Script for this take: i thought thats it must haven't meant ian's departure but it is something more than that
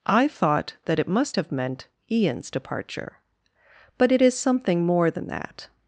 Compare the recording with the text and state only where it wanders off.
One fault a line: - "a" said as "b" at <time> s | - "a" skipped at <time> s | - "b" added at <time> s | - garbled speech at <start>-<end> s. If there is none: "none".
- "thats" said as "that" at 0.8 s
- "haven't" said as "have" at 1.3 s